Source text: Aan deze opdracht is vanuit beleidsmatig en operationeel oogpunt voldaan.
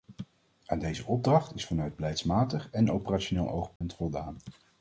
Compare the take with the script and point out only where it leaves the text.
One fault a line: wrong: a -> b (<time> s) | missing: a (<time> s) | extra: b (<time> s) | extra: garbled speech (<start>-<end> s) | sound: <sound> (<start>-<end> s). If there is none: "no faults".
sound: dropout (3.8-3.8 s)